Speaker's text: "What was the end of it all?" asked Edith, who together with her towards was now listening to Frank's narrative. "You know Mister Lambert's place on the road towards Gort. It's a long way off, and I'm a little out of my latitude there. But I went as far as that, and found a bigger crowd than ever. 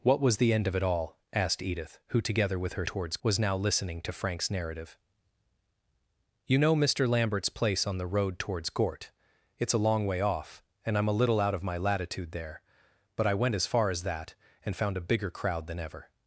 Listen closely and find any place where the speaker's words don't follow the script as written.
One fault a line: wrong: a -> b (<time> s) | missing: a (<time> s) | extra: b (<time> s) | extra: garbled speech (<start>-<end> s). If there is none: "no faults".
no faults